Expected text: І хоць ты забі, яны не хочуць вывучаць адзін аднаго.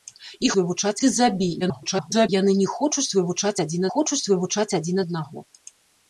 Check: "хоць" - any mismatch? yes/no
yes